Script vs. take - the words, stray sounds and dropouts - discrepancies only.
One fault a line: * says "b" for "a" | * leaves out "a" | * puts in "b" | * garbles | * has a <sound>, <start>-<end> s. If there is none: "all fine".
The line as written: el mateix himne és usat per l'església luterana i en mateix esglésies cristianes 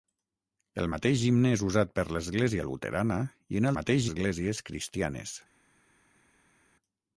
all fine